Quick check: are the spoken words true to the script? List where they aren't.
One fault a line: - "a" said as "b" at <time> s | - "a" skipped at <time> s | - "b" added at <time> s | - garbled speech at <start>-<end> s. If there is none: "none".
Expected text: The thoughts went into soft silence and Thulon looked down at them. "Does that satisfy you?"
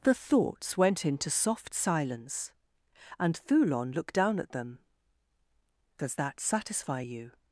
none